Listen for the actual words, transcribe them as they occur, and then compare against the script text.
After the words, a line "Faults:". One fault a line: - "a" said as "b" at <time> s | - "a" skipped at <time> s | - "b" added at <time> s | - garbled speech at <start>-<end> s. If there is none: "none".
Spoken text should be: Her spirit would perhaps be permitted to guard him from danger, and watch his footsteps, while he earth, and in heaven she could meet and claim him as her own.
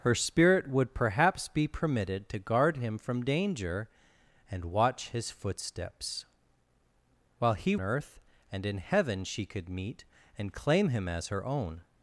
Her spirit would perhaps be permitted to guard him from danger, and watch his footsteps, while he earth, and in heaven she could meet and claim him as her own.
Faults:
none